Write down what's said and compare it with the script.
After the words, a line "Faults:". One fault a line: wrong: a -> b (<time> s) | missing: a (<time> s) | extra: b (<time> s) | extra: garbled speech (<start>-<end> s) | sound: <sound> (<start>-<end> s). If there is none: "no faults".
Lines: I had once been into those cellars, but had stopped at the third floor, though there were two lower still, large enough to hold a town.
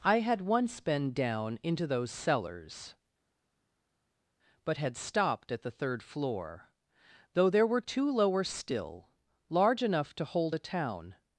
I had once been down into those cellars, but had stopped at the third floor, though there were two lower still, large enough to hold a town.
Faults:
extra: down (1.1 s)